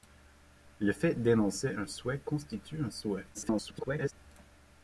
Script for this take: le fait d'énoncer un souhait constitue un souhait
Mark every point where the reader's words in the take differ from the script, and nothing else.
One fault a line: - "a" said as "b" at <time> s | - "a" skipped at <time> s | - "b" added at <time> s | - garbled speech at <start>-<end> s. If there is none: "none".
- garbled speech at 3.3-4.1 s